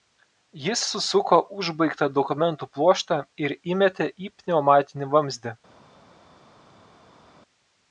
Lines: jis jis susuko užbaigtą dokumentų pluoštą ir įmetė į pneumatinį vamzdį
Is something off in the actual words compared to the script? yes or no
yes